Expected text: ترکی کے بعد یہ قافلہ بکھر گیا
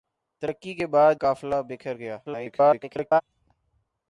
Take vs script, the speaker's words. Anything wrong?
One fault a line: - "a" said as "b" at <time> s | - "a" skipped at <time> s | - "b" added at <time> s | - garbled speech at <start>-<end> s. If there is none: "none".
- "یہ" skipped at 1.1 s
- garbled speech at 2.2-3.2 s